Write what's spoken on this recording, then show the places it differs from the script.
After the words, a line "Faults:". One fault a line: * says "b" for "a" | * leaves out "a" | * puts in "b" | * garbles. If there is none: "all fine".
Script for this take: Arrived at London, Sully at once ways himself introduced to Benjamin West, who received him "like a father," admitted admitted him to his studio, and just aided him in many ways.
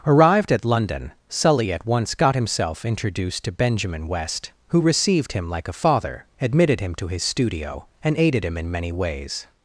Arrived at London, Sully at once got himself introduced to Benjamin West, who received him "like a father," admitted him to his studio, and aided him in many ways.
Faults:
* says "got" for "ways"
* leaves out "admitted"
* leaves out "just"